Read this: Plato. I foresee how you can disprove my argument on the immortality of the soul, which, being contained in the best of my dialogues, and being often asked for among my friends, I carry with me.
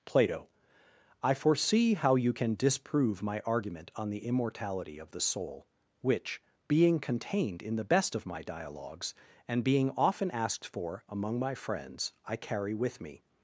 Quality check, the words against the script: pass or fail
pass